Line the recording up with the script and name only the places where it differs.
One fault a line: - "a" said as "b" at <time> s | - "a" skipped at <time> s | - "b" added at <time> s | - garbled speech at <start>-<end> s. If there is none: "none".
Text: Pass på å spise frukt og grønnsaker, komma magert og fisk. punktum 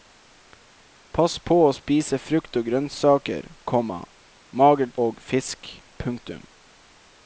none